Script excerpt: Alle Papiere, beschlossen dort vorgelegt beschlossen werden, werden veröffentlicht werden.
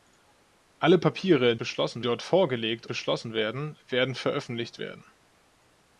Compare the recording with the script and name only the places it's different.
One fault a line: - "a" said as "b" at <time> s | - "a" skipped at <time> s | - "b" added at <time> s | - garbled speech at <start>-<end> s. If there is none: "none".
none